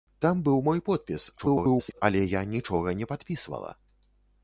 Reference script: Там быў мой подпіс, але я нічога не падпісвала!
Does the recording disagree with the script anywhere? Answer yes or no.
yes